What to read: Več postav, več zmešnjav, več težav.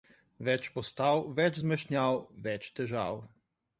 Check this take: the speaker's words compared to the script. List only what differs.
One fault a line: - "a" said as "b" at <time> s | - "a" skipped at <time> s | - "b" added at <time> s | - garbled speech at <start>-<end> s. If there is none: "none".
none